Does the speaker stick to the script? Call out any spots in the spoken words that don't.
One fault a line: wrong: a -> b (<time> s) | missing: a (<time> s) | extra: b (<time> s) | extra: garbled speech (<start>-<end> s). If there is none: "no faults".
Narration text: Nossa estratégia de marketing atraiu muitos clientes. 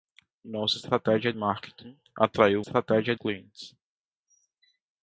missing: de (1.3 s)
wrong: muitos -> estratégia (2.6 s)